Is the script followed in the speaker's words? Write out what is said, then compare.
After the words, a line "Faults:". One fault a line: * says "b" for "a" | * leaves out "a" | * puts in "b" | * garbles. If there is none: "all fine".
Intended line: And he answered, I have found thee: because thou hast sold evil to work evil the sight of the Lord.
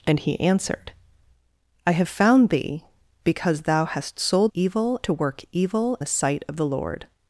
And he answered, I have found thee: because thou hast sold evil to work evil the sight of the Lord.
Faults:
all fine